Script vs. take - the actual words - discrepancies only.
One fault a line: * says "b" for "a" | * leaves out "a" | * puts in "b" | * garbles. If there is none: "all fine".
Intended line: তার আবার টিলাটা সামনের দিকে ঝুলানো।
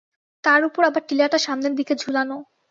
* puts in "উপর"